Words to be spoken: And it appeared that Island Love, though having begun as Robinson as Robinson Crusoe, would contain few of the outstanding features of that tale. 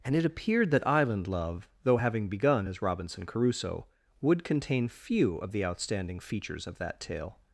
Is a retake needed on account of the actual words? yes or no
yes